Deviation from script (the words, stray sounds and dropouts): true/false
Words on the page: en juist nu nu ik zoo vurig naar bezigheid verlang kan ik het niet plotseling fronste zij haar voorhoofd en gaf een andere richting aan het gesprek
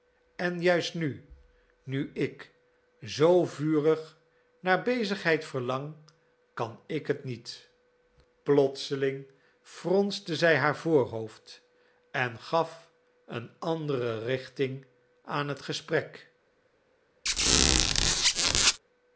true